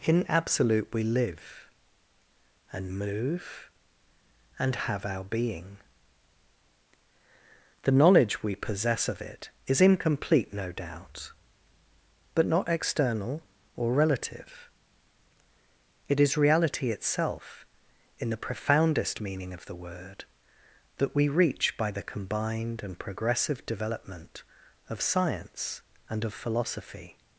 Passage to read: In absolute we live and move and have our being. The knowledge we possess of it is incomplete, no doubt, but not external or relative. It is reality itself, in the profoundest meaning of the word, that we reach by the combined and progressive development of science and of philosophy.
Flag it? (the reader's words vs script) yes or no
no